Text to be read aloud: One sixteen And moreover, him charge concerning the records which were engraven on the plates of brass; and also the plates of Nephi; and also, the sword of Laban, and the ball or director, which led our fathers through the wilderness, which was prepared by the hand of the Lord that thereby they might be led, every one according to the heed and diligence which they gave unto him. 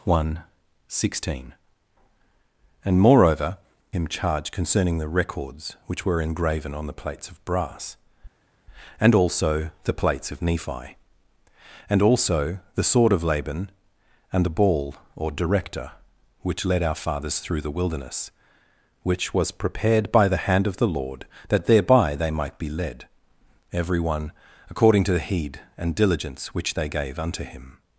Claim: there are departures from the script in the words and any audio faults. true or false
false